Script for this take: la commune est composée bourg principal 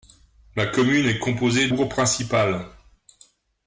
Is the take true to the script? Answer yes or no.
yes